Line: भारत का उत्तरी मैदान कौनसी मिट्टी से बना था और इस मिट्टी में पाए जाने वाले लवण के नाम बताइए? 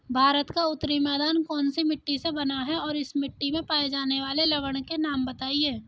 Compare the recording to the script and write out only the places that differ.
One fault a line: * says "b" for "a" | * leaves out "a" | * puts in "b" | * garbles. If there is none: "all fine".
* says "है" for "था"